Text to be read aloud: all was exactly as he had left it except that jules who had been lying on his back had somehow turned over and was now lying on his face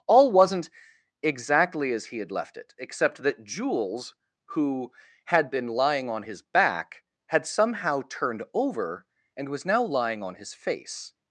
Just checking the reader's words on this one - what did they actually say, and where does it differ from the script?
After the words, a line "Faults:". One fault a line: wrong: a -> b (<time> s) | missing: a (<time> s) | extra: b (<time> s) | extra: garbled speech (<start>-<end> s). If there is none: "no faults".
all wasn't exactly as he had left it except that jules who had been lying on his back had somehow turned over and was now lying on his face
Faults:
wrong: was -> wasn't (0.3 s)